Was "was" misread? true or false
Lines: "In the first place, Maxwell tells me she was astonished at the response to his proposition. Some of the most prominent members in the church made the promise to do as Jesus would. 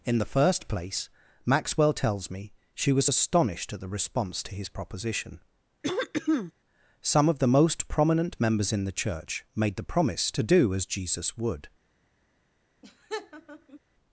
false